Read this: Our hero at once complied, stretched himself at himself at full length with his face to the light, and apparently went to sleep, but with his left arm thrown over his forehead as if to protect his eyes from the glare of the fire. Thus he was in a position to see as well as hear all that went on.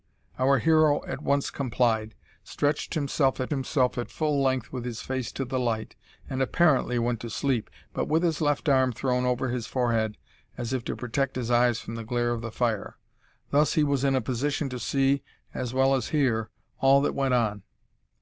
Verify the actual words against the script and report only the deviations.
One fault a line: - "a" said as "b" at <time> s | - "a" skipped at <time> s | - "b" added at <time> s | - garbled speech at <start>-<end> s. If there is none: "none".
none